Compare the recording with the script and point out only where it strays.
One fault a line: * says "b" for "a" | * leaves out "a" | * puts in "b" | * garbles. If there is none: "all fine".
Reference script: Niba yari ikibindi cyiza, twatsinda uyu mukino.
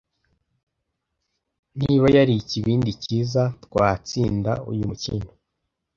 all fine